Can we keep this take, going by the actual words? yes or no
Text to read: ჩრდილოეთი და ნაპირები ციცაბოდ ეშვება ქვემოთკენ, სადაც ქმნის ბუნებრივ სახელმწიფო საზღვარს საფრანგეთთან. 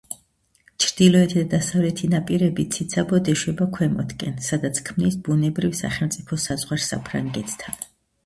no